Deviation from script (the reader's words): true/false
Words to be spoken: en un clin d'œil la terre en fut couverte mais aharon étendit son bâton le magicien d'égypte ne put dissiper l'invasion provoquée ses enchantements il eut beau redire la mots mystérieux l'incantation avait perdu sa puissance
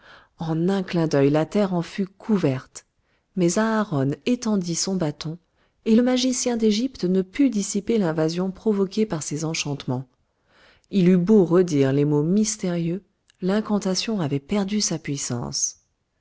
true